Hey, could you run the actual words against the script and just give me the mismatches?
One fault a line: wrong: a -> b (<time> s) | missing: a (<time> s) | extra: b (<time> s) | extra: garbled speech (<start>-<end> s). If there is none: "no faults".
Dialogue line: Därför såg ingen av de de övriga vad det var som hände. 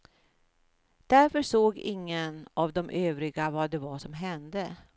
missing: de (2.9 s)